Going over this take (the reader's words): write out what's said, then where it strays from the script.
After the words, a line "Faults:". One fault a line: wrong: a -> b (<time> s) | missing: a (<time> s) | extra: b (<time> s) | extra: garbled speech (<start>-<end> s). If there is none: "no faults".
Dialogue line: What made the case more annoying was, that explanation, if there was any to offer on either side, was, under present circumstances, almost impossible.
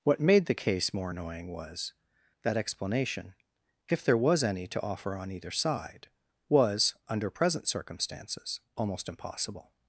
What made the case more annoying was, that explanation, if there was any to offer on either side, was, under present circumstances, almost impossible.
Faults:
no faults